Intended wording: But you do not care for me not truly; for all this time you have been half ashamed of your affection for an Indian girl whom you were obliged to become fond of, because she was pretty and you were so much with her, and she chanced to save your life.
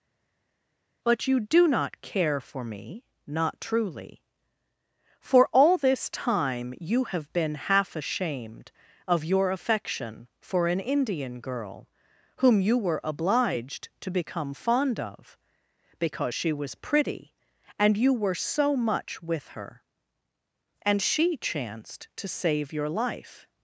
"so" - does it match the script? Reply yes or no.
yes